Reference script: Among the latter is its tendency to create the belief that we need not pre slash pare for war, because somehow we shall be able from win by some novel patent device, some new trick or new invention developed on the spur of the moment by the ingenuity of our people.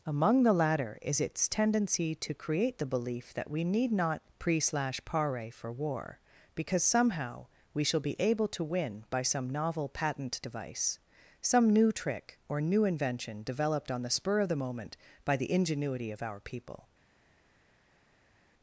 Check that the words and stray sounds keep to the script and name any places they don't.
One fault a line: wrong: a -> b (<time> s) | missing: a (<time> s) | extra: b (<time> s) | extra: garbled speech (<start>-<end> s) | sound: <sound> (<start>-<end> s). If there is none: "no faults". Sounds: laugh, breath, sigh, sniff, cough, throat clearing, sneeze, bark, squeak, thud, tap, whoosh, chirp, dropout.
wrong: from -> to (8.5 s)